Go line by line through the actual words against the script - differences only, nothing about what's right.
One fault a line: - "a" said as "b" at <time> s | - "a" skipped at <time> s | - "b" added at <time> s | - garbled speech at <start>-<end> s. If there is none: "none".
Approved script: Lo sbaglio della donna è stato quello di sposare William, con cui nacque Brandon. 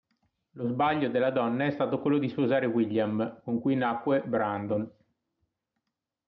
none